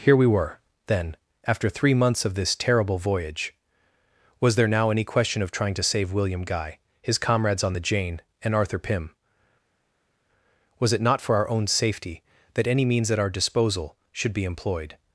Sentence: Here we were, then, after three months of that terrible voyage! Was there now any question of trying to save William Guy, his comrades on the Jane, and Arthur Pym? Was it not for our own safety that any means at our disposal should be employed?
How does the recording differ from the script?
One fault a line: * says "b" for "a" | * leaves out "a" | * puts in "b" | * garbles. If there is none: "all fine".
* says "this" for "that"